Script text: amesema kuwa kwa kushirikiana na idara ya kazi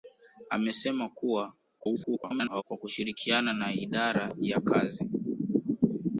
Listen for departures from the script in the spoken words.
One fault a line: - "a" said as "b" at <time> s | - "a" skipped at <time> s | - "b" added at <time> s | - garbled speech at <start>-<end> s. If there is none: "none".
- garbled speech at 1.8-2.6 s